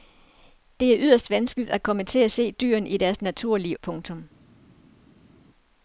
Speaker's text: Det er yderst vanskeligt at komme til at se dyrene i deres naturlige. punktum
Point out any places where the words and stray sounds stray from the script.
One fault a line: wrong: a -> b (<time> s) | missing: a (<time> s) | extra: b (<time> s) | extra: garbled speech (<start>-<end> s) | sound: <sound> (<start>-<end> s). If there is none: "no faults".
no faults